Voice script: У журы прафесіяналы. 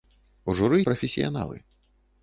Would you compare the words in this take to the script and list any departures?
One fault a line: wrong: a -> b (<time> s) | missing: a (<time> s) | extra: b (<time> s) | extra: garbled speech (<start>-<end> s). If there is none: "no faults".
no faults